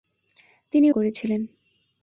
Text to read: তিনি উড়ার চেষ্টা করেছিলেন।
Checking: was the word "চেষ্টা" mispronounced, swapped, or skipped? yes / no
yes